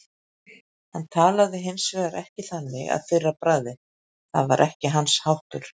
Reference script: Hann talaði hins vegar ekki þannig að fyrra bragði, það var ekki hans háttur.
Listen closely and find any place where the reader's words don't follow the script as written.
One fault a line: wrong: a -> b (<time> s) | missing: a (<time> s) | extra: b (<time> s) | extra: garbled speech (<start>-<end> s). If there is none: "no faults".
no faults